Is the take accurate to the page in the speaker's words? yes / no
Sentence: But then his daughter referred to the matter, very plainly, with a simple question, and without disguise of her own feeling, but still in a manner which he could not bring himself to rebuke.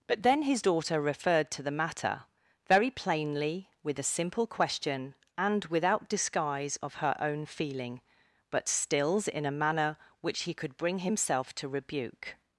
no